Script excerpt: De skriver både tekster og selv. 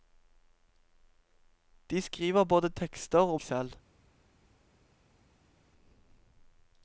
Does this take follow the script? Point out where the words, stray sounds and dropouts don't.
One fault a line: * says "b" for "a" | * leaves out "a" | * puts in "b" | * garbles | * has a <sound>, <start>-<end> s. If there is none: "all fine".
all fine